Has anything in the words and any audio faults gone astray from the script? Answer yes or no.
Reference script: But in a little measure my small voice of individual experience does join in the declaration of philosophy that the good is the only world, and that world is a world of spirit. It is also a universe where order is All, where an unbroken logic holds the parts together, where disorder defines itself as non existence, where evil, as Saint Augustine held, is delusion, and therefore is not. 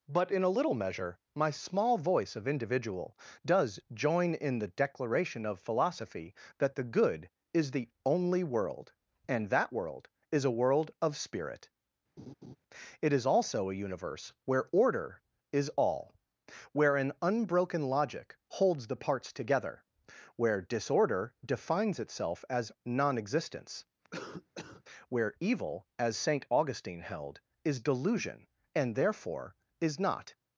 yes